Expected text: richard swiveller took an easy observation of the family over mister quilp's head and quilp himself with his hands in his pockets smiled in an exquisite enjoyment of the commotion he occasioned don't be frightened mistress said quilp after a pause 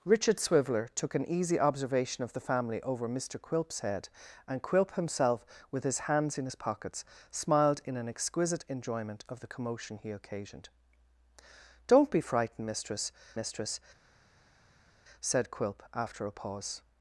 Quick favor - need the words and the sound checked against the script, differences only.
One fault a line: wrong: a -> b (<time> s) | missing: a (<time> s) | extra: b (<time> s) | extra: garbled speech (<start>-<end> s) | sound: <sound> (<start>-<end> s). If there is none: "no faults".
extra: mistress (13.3 s)